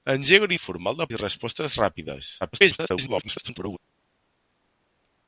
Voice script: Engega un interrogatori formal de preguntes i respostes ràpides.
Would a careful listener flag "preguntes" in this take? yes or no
yes